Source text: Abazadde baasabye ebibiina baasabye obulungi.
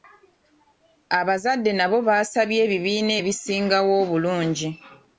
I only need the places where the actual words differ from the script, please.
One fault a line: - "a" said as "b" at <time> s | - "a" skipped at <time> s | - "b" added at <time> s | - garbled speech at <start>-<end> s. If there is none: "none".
- "nabo" added at 1.8 s
- "baasabye" said as "ebisingawo" at 3.2 s